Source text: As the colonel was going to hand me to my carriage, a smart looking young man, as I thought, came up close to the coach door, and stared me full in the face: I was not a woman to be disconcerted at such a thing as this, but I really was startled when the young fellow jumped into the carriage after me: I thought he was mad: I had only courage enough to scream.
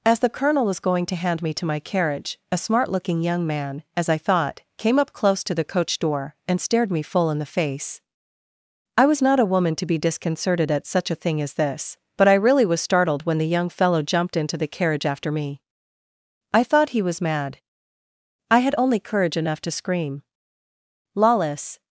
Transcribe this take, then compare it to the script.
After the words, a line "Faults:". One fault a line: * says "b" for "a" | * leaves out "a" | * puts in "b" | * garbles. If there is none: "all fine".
As the colonel was going to hand me to my carriage, a smart looking young man, as I thought, came up close to the coach door, and stared me full in the face: I was not a woman to be disconcerted at such a thing as this, but I really was startled when the young fellow jumped into the carriage after me: I thought he was mad: I had only courage enough to scream. Lawless
Faults:
* puts in "Lawless"